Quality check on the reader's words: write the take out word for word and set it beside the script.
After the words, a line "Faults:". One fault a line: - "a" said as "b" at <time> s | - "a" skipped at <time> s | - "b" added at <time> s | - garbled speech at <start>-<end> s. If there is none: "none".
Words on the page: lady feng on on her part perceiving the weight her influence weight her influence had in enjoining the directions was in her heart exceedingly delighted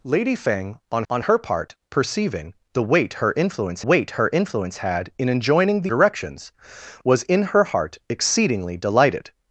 lady feng on on her part perceiving the weight her influence weight her influence had in enjoining the directions was in her heart exceedingly delighted
Faults:
none